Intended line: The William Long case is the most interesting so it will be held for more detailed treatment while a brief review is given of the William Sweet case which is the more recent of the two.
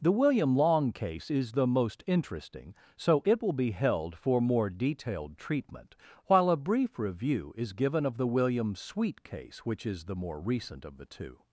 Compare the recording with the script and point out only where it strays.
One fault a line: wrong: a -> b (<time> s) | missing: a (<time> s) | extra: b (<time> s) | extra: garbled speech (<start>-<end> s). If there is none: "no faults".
no faults